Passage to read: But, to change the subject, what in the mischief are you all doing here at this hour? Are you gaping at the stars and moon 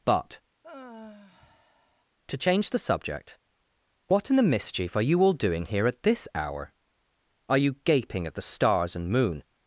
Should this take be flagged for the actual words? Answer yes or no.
no